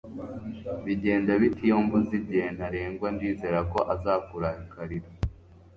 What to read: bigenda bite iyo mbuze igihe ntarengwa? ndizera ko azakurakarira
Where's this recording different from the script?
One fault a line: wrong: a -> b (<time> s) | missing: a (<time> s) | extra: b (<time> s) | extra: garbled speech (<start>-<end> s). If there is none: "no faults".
no faults